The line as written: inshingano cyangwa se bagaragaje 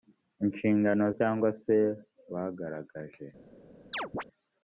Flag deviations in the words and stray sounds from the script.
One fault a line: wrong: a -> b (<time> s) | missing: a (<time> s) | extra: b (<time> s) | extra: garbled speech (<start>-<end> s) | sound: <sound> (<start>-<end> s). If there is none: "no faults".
sound: chirp (3.9-4.2 s)